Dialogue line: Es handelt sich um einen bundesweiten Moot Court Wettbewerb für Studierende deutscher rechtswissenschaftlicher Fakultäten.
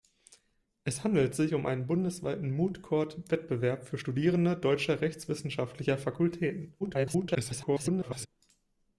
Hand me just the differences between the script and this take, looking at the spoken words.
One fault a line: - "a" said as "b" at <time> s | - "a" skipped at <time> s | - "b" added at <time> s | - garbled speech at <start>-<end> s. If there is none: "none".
- garbled speech at 6.8-8.3 s